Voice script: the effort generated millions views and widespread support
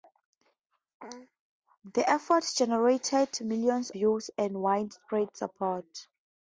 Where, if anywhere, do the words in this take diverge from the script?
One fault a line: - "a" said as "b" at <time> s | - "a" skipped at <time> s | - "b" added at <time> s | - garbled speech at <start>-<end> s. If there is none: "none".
none